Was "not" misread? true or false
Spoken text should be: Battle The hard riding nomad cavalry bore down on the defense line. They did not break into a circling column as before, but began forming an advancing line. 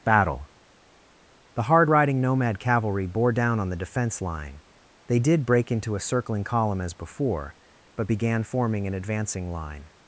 true